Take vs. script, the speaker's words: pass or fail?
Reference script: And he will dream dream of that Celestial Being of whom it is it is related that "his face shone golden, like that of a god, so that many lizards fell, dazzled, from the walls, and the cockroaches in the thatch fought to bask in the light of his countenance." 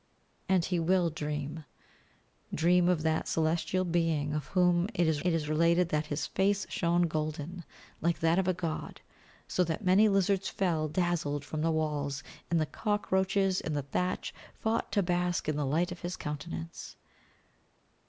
pass